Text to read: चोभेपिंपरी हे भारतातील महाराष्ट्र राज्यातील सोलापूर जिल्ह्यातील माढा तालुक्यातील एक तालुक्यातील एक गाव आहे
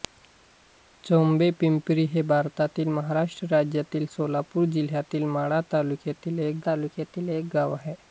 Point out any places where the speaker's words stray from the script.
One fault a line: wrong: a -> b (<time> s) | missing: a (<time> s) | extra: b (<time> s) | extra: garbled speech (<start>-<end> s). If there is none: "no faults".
no faults